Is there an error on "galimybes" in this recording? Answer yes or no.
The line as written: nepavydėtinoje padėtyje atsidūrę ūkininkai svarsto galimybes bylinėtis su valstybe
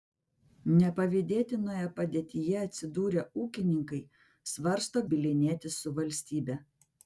yes